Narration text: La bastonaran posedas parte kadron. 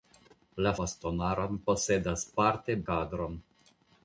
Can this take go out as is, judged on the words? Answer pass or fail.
pass